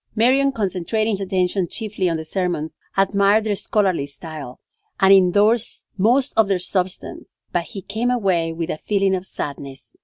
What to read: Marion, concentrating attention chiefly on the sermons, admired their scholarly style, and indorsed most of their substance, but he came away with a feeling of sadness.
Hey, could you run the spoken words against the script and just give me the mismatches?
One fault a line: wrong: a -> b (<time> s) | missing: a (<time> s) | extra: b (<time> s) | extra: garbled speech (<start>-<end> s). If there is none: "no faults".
no faults